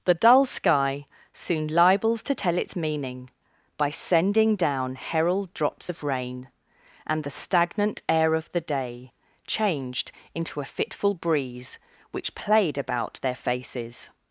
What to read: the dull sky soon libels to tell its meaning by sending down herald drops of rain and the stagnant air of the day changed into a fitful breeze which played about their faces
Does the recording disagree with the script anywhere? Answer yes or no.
no